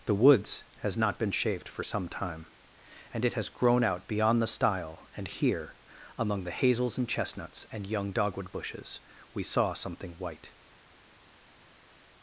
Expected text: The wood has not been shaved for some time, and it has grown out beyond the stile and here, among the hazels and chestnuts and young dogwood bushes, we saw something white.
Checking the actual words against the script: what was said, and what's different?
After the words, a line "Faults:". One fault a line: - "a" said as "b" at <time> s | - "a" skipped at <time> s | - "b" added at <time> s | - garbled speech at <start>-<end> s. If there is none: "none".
The woods has not been shaved for some time, and it has grown out beyond the stile and here, among the hazels and chestnuts and young dogwood bushes, we saw something white.
Faults:
- "wood" said as "woods" at 0.1 s